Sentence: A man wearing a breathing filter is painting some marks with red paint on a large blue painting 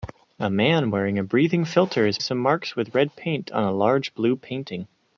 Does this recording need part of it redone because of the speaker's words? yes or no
yes